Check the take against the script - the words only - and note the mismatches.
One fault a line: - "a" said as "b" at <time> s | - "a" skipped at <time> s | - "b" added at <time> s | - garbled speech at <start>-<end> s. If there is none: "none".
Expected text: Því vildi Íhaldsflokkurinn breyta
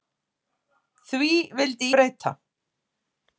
- "Íhaldsflokkurinn" skipped at 1.9 s